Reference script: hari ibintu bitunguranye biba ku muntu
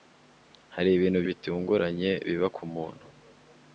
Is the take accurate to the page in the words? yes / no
yes